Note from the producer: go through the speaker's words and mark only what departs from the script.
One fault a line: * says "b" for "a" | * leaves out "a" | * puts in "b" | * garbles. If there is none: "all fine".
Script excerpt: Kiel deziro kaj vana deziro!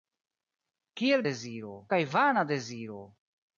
all fine